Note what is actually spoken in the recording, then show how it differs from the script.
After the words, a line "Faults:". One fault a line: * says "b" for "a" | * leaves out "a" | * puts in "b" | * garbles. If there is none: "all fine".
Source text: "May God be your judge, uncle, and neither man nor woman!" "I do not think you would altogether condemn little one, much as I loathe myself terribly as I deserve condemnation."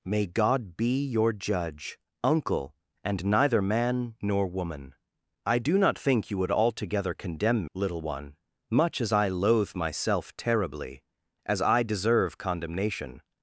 "May God be your judge, uncle, and neither man nor woman!" "I do not think you would altogether condemn little one, much as I loathe myself terribly as I deserve condemnation."
Faults:
all fine